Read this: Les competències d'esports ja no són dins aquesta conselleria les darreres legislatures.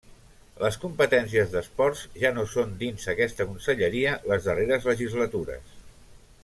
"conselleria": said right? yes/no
yes